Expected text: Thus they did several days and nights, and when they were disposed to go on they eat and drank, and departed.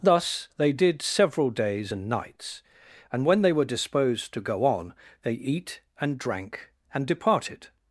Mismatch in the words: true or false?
false